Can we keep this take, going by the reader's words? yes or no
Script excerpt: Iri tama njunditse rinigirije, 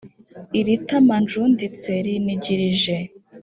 yes